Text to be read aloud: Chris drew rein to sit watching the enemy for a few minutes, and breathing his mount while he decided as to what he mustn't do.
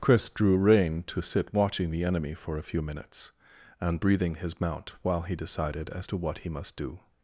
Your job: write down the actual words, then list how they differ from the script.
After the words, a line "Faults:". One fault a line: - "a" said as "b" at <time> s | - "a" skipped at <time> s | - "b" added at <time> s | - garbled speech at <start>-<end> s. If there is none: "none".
Chris drew rein to sit watching the enemy for a few minutes, and breathing his mount while he decided as to what he must do.
Faults:
- "mustn't" said as "must" at 6.5 s